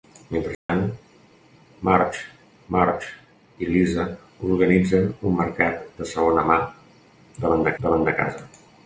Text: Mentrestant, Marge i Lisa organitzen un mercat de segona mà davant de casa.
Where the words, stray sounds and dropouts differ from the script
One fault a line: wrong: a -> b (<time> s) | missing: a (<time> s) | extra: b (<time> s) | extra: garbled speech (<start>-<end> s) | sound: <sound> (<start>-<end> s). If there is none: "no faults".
sound: dropout (0.5-0.7 s)
extra: Marge (2.8 s)
extra: davant de (7.8 s)